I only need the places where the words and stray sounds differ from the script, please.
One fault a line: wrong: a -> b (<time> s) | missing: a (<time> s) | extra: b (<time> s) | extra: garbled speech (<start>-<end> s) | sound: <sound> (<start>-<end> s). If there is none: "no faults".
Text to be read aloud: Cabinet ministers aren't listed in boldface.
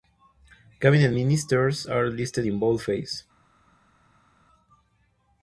wrong: aren't -> are (1.8 s)